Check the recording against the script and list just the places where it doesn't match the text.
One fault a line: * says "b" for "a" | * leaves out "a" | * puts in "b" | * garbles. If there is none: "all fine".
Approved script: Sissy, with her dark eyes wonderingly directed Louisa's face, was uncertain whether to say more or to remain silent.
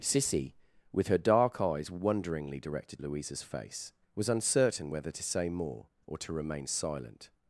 all fine